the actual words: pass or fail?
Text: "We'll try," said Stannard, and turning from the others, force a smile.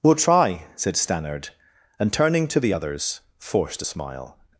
fail